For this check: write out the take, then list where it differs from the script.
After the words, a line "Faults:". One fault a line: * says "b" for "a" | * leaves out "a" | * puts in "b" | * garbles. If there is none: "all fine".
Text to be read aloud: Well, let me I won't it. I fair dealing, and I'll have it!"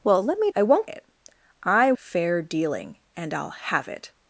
Well, let me I won't it. I fair dealing, and I'll have it!"
Faults:
all fine